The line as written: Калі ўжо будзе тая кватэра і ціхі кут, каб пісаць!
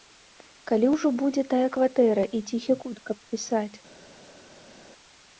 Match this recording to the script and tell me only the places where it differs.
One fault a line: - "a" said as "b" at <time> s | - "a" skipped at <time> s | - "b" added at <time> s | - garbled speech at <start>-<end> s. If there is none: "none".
none